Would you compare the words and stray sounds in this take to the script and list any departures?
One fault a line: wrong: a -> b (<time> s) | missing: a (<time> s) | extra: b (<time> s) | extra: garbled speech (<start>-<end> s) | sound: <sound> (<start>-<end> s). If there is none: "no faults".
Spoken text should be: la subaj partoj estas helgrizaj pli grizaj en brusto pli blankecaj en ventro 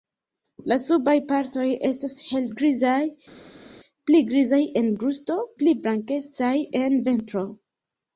no faults